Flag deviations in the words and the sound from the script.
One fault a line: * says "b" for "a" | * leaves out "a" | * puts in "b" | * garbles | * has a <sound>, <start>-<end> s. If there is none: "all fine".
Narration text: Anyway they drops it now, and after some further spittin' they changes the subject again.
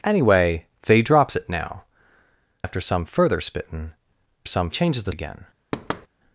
* leaves out "and"
* says "some" for "they"
* leaves out "subject"
* has a thud, 5.7-6.1 s